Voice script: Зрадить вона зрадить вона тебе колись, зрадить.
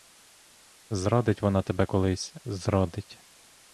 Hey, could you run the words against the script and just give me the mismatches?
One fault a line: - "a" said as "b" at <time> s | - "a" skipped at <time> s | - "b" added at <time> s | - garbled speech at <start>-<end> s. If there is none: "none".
- "зрадить вона" skipped at 1.6 s